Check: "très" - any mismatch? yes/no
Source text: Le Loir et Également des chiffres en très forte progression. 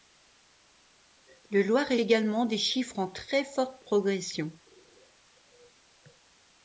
no